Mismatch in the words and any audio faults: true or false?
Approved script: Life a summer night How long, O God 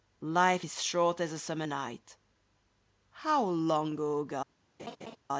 true